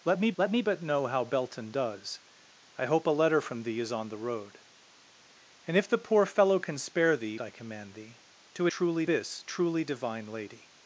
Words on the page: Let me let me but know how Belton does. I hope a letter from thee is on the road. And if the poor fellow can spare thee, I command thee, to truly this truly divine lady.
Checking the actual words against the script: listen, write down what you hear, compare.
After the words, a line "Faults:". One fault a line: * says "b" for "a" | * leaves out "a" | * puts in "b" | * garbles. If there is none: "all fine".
Let me let me but know how Belton does. I hope a letter from thee is on the road. And if the poor fellow can spare thee, I command thee, to truly this truly divine lady.
Faults:
all fine